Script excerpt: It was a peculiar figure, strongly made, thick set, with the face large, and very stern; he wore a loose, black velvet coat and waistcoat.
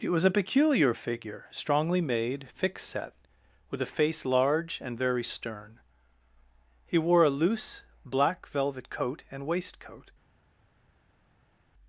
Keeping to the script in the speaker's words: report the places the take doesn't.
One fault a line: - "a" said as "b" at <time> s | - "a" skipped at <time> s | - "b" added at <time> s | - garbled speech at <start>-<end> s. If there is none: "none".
- "the" said as "a" at 3.8 s